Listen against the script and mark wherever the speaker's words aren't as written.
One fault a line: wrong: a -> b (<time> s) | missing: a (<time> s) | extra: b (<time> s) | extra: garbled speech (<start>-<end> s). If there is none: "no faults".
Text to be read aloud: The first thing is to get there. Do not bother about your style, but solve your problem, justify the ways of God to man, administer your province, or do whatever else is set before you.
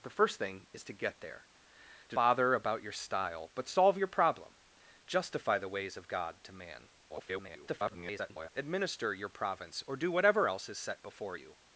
missing: not (2.1 s)
extra: garbled speech (7.1-8.5 s)